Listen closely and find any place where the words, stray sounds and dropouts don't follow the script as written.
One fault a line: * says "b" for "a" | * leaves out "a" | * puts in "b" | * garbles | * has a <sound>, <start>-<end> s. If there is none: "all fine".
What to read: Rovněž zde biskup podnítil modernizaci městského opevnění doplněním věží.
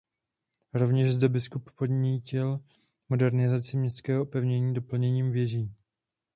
all fine